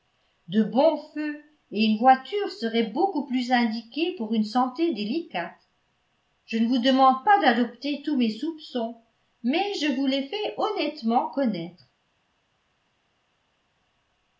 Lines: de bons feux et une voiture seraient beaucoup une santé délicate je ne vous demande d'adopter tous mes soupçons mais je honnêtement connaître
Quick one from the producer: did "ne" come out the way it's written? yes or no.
yes